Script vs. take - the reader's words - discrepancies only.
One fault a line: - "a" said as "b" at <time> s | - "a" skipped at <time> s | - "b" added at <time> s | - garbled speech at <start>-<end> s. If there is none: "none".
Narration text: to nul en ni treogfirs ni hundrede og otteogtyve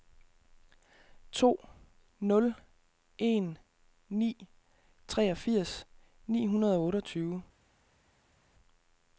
none